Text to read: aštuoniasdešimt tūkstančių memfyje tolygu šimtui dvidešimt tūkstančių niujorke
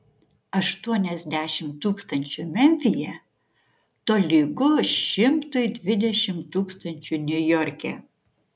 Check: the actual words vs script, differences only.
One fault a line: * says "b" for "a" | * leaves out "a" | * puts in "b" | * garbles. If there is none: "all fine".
all fine